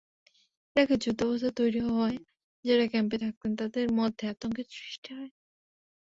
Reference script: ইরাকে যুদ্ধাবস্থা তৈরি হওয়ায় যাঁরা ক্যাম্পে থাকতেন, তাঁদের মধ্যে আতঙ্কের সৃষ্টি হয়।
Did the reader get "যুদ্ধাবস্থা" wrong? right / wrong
right